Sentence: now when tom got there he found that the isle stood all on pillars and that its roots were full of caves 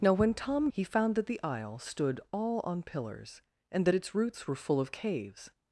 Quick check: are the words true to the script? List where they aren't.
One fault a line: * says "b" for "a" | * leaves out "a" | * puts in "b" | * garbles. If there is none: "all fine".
* leaves out "got there"